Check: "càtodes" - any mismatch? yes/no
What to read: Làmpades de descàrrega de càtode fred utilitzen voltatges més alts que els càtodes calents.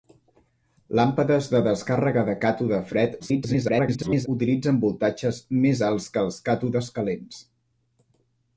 no